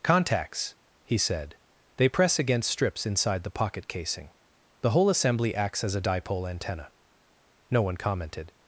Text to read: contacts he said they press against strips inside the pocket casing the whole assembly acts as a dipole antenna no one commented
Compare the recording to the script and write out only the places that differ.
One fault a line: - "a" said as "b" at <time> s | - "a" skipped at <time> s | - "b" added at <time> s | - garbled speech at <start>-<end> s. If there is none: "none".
none